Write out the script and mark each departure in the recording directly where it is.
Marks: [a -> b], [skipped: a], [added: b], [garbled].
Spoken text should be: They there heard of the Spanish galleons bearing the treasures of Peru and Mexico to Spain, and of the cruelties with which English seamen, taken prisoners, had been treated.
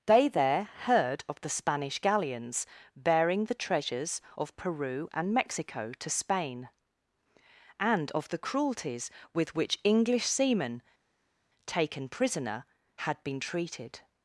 They there heard of the Spanish galleons bearing the treasures of Peru and Mexico to Spain, and of the cruelties with which English seamen, taken [prisoners, -> prisoner] had been treated.